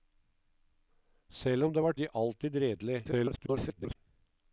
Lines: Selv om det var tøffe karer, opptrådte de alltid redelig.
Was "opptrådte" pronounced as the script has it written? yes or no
no